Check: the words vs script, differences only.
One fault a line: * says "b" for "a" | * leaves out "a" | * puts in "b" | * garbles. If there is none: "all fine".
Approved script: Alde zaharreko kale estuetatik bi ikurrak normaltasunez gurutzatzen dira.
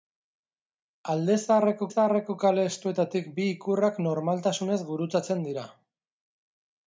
* puts in "zaharreko"